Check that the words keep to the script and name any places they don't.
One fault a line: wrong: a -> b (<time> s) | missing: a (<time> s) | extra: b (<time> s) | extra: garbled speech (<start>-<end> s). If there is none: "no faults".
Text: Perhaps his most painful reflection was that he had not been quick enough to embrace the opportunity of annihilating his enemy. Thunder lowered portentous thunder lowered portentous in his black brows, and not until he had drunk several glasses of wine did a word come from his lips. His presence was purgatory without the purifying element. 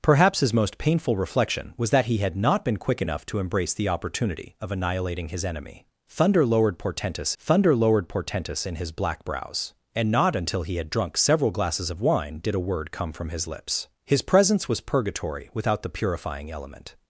no faults